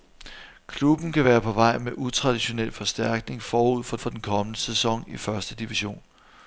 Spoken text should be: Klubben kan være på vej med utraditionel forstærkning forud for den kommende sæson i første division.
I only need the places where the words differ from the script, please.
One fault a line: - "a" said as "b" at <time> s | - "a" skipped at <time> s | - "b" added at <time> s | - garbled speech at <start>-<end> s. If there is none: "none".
- "for" added at 4.0 s